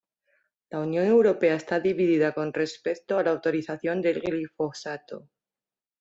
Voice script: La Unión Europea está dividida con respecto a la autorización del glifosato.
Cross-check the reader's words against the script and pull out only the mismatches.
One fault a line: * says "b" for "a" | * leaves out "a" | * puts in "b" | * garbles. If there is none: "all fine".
all fine